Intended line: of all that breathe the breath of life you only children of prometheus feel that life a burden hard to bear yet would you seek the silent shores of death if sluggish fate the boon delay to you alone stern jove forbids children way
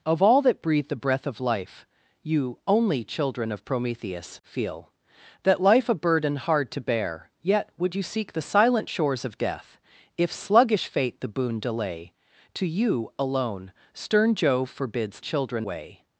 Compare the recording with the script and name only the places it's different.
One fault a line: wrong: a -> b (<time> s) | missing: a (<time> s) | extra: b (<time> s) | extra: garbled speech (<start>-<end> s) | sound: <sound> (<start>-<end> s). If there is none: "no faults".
no faults